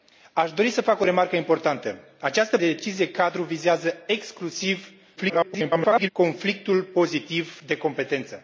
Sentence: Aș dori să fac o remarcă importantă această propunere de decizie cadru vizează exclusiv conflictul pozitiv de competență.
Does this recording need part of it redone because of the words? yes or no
yes